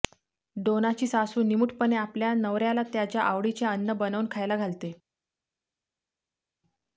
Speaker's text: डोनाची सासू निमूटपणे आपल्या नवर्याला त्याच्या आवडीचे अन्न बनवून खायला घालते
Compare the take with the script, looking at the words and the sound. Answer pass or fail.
pass